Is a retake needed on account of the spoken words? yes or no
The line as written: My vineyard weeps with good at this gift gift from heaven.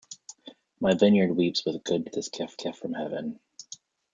no